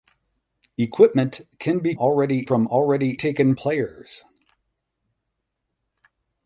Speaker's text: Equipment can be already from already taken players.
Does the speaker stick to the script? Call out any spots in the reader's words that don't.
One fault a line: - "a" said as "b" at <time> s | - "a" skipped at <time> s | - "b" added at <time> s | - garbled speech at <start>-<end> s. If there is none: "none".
none